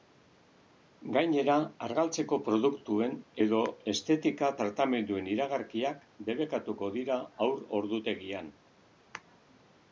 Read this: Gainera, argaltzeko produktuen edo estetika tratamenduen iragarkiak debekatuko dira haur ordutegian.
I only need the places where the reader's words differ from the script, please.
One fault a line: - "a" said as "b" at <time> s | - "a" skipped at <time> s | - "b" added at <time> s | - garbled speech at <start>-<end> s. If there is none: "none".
none